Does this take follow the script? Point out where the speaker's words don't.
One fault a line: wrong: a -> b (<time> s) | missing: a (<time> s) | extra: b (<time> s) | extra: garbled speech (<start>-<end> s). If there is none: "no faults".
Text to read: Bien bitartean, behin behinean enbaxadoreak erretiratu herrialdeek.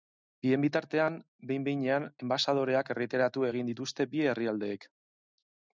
extra: egin dituzte bi (3.5 s)